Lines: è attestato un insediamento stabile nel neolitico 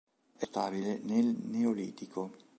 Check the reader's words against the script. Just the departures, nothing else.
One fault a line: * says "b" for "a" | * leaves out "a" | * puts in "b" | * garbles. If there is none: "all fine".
* leaves out "attestato un insediamento"